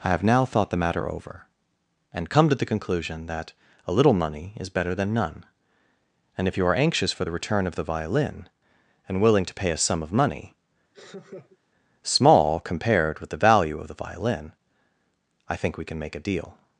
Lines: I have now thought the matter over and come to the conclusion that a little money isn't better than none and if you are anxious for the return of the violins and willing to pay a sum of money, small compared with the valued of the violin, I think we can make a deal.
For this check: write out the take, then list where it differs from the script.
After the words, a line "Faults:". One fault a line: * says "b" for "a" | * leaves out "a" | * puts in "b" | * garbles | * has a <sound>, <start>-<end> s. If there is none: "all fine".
I have now thought the matter over and come to the conclusion that a little money is better than none and if you are anxious for the return of the violin and willing to pay a sum of money, small compared with the value of the violin, I think we can make a deal.
Faults:
* says "is" for "isn't"
* says "violin" for "violins"
* has a laugh, 10.9-11.6 s
* says "value" for "valued"